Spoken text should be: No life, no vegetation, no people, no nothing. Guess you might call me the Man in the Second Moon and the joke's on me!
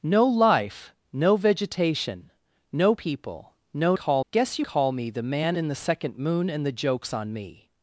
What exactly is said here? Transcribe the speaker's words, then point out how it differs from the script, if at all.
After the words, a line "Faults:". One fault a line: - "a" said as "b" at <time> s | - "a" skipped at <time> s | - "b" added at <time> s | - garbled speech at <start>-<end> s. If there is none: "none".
No life, no vegetation, no people, no call. Guess you call me the Man in the Second Moon and the joke's on me!
Faults:
- "nothing" said as "call" at 4.0 s
- "might" skipped at 4.6 s